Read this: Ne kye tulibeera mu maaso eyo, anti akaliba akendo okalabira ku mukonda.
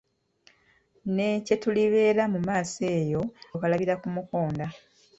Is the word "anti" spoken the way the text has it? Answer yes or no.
no